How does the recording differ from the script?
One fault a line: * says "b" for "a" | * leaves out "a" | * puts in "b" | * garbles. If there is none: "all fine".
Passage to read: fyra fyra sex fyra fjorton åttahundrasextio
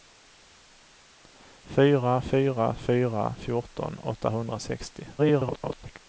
* leaves out "sex"
* garbles